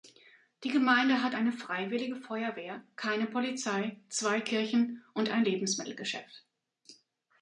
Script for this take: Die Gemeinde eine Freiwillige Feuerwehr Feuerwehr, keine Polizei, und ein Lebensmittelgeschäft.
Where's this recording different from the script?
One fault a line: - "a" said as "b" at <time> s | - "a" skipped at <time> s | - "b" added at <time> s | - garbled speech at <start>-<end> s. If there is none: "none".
- "hat" added at 1.2 s
- "Feuerwehr" skipped at 2.8 s
- "zwei Kirchen" added at 4.1 s